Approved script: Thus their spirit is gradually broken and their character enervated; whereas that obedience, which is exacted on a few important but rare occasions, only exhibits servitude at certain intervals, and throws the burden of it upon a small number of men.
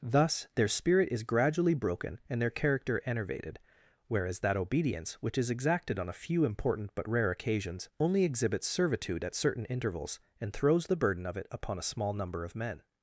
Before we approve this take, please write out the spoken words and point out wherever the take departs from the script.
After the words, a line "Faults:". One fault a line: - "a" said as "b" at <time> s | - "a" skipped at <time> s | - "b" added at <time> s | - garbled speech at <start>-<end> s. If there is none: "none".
Thus their spirit is gradually broken and their character enervated; whereas that obedience, which is exacted on a few important but rare occasions, only exhibits servitude at certain intervals, and throws the burden of it upon a small number of men.
Faults:
none